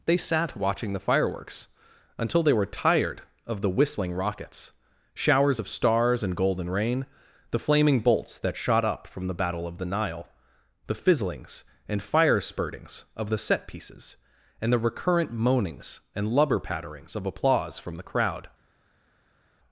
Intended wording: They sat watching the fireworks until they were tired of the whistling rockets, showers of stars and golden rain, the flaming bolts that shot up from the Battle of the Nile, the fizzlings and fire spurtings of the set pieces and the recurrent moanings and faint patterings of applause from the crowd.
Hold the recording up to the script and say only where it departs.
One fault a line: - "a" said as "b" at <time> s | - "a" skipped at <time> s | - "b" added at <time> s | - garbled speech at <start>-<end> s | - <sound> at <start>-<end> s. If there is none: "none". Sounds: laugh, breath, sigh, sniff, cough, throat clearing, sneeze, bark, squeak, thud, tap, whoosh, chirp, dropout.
- "faint" said as "lubber" at 16.3 s